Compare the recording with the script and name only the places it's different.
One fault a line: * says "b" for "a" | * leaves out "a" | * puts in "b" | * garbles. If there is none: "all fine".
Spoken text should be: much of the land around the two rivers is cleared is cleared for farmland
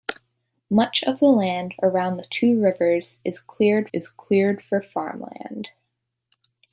all fine